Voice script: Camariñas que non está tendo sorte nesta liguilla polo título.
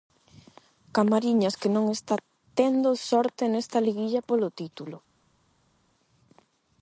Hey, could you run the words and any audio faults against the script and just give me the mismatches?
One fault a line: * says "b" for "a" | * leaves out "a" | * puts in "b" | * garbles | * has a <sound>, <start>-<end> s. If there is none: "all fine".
all fine